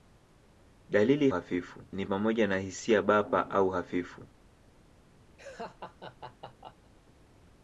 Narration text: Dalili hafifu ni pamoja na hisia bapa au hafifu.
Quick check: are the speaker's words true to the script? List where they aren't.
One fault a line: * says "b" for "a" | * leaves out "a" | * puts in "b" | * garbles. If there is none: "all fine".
all fine